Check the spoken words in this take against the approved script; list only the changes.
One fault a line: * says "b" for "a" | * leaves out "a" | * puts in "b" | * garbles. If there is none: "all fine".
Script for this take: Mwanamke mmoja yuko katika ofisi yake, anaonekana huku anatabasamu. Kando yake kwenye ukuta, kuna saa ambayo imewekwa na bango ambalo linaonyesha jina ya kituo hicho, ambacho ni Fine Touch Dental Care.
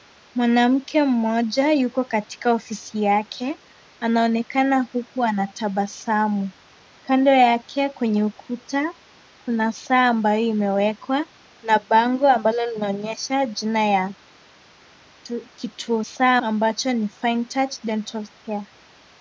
* says "saa" for "hicho"